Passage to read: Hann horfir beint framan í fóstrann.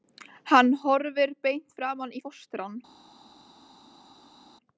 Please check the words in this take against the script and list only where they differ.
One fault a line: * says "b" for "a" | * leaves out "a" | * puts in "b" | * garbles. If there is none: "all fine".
all fine